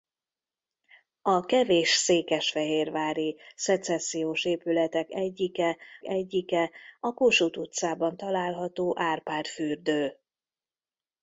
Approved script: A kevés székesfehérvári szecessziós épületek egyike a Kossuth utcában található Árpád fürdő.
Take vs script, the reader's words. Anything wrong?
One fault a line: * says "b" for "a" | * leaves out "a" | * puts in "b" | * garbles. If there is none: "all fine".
* puts in "egyike"